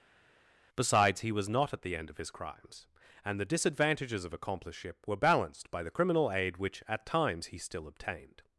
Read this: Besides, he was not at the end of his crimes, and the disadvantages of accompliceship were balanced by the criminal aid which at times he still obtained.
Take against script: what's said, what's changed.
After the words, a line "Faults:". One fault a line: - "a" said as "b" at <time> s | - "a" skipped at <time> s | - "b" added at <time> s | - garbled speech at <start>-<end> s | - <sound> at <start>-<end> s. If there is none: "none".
Besides, he was not at the end of his crimes, and the disadvantages of accompliceship were balanced by the criminal aid which at times he still obtained.
Faults:
none